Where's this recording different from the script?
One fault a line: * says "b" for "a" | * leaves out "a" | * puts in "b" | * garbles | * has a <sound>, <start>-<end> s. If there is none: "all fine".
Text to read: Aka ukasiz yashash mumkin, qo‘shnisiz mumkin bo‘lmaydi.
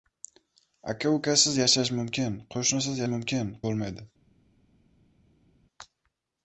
all fine